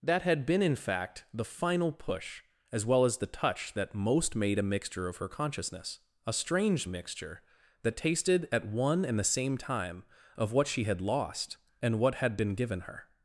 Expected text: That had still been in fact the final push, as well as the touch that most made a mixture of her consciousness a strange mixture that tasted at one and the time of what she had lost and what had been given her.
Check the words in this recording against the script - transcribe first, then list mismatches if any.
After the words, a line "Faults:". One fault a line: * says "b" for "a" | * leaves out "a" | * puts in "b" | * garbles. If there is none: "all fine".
That had been in fact the final push, as well as the touch that most made a mixture of her consciousness a strange mixture that tasted at one and the same time of what she had lost and what had been given her.
Faults:
* leaves out "still"
* puts in "same"